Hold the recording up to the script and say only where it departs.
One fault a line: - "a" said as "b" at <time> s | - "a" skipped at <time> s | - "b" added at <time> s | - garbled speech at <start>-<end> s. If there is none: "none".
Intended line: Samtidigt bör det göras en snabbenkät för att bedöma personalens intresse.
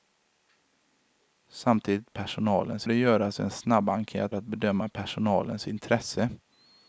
- "bör" said as "personalens" at 2.1 s
- "för" skipped at 4.3 s